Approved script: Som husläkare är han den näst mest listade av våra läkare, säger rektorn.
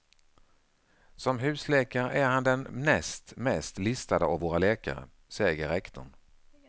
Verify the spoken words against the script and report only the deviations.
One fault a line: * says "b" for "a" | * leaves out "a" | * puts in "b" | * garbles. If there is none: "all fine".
all fine